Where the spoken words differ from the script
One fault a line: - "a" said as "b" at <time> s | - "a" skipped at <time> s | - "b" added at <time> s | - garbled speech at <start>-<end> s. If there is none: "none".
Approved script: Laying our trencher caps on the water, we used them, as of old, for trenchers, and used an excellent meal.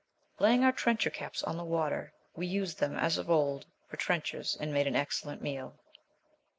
- "used" said as "made" at 4.7 s